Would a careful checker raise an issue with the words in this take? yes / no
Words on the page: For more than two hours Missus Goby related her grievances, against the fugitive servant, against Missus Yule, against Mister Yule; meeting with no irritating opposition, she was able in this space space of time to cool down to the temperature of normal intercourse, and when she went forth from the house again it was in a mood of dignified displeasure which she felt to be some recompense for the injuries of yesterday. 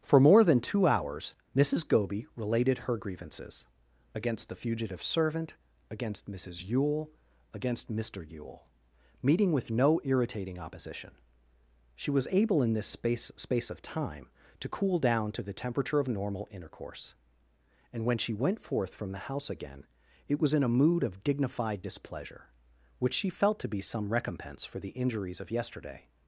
no